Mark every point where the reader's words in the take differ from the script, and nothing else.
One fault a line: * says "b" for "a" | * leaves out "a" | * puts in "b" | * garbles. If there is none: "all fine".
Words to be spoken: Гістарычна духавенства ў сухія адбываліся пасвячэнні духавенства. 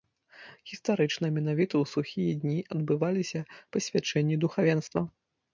* says "менавіта" for "духавенства"
* puts in "дні"